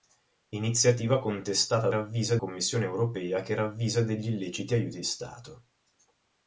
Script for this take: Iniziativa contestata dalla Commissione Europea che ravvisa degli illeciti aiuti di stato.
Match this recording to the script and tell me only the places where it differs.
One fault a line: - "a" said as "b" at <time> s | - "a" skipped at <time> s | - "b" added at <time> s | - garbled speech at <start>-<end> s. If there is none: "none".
- "dalla" said as "ravvisa" at 1.9 s
- "di" skipped at 5.0 s